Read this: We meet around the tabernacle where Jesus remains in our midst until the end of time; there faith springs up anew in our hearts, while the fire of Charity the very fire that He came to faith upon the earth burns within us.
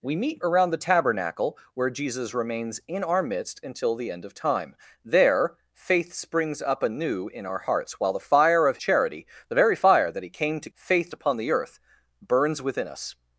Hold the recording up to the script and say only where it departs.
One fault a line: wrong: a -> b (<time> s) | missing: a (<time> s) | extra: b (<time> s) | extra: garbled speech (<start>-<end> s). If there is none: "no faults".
no faults